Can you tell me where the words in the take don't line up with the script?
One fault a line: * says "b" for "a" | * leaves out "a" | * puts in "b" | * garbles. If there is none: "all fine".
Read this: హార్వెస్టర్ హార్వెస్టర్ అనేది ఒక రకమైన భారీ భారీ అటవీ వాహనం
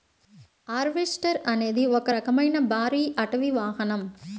* leaves out "హార్వెస్టర్"
* leaves out "భారీ"